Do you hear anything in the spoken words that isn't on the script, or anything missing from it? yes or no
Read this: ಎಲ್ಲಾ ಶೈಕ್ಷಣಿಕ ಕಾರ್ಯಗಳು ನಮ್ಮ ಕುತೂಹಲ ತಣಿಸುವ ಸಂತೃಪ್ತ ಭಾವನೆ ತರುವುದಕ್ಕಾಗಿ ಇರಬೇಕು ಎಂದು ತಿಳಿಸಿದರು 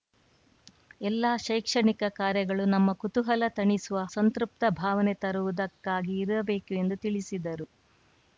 no